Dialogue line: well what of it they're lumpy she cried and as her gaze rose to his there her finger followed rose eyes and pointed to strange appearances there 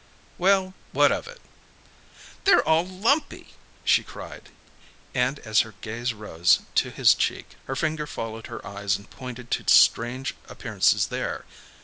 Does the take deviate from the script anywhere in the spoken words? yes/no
yes